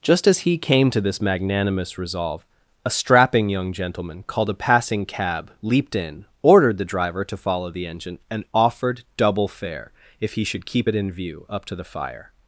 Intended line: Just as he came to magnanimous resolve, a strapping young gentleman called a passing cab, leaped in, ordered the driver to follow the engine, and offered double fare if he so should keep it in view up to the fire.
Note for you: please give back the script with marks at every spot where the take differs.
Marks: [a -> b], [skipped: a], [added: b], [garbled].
Just as he came to [added: this] magnanimous resolve, a strapping young gentleman called a passing cab, leaped in, ordered the driver to follow the engine, and offered double fare if he [skipped: so] should keep it in view up to the fire.